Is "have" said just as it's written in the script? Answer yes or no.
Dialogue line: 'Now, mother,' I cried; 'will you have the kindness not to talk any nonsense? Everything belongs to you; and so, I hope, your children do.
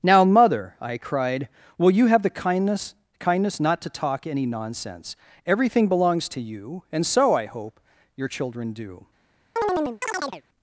yes